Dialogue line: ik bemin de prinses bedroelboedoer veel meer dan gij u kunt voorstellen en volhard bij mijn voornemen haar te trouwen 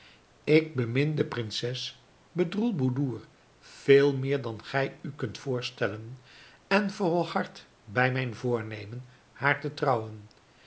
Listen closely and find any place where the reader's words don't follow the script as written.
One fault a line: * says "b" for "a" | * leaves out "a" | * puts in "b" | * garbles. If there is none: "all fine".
all fine